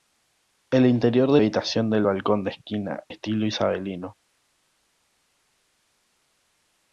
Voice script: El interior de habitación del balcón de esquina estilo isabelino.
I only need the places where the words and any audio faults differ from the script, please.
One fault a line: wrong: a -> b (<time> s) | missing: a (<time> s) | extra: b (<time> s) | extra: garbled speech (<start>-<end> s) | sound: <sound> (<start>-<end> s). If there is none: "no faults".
no faults